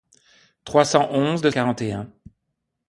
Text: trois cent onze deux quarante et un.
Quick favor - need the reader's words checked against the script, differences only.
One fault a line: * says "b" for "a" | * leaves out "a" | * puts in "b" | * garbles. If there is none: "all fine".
all fine